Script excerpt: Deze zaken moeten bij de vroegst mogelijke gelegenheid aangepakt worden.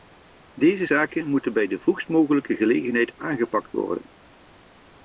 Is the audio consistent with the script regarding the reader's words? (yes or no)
yes